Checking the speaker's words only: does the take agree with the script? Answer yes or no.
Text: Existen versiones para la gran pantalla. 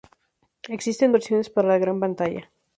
yes